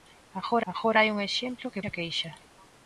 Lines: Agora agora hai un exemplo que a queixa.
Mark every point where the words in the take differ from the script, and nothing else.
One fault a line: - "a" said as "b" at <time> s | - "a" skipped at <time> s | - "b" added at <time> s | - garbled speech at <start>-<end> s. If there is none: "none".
none